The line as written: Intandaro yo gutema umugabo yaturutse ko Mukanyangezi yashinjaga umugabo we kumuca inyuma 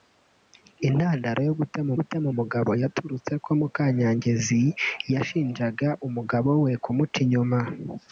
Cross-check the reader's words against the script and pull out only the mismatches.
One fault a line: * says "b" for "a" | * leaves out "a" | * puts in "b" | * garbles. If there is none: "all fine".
* puts in "gutema"